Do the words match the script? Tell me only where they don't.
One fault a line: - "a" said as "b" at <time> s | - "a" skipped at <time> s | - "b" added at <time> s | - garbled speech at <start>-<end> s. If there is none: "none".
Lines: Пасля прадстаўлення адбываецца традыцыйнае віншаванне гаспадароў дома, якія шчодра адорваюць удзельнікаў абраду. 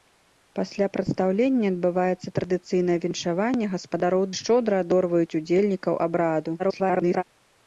- "дома якія" skipped at 4.2 s
- garbled speech at 6.6-7.2 s